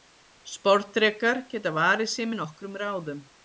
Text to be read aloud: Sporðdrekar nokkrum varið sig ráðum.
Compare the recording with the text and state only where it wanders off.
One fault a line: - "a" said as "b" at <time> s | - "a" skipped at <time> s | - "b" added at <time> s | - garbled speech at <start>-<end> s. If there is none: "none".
- "nokkrum" said as "geta" at 1.5 s
- "með nokkrum" added at 2.3 s